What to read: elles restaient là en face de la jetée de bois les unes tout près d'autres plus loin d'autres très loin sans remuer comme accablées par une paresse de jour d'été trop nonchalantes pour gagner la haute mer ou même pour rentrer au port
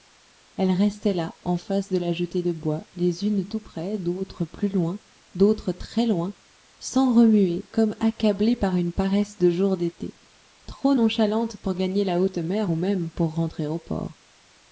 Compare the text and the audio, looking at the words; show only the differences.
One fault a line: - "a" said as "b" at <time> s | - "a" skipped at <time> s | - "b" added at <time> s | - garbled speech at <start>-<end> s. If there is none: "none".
none